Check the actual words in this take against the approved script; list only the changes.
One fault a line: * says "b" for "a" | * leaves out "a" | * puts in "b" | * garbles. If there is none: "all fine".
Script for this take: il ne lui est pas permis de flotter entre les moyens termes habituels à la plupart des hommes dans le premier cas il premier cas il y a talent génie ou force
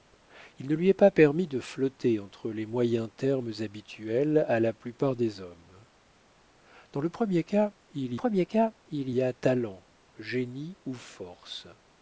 all fine